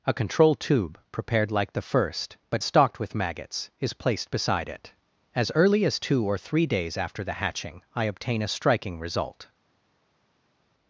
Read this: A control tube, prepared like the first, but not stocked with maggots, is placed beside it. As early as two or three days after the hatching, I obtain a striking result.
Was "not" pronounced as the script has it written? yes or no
no